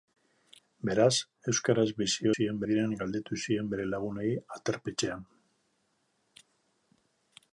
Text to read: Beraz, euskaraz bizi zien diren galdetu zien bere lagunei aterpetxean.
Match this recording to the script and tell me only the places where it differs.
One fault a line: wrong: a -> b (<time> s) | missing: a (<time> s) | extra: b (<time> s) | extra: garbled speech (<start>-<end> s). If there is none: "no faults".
no faults